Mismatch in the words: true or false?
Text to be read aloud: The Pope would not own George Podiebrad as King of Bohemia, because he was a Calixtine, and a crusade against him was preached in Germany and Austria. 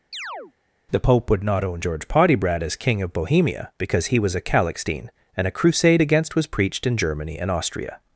true